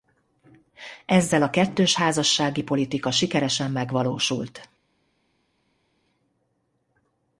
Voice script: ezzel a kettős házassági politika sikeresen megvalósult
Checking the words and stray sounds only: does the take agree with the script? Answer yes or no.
yes